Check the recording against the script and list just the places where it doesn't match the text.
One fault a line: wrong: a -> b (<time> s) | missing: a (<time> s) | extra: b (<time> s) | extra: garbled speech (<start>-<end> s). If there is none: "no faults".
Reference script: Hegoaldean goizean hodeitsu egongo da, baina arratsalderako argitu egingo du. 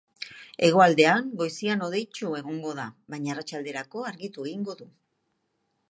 no faults